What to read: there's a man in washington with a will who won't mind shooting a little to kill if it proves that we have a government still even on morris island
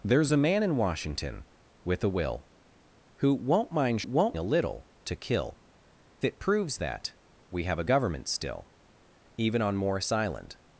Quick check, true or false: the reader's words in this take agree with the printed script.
false